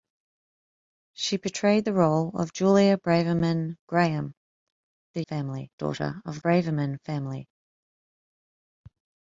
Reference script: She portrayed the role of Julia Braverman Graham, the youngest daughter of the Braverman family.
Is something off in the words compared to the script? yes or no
yes